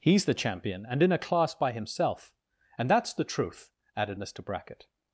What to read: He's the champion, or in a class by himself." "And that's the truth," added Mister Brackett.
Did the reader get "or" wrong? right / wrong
wrong